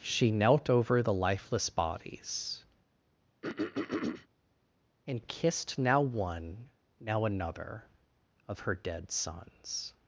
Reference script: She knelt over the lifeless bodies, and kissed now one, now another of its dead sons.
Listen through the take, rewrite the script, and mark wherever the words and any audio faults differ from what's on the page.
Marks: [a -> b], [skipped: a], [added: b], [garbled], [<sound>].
She knelt over the lifeless bodies, [throat clearing] and kissed now one, now another of [its -> her] dead sons.